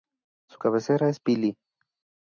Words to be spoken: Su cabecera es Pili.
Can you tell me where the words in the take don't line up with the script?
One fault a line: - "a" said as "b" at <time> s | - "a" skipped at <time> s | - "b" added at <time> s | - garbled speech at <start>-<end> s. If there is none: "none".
none